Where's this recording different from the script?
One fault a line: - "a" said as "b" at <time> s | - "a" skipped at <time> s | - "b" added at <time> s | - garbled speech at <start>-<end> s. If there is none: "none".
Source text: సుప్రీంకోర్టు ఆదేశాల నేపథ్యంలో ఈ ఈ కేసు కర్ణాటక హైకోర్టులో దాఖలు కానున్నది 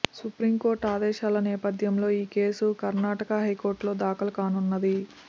- "ఈ" skipped at 2.3 s